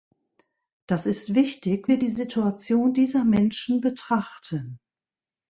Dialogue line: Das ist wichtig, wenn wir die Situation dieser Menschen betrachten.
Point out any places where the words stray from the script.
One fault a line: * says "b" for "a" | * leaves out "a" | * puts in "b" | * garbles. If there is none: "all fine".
* leaves out "wenn"